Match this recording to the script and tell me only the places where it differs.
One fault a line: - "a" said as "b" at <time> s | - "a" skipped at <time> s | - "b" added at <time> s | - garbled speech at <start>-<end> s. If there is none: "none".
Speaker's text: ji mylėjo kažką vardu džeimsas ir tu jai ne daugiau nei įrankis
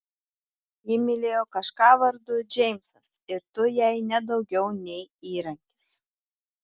none